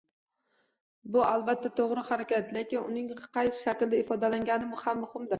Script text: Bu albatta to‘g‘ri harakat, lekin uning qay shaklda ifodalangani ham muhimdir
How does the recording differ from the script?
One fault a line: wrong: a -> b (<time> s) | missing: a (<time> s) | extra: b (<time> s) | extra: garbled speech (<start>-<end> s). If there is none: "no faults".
no faults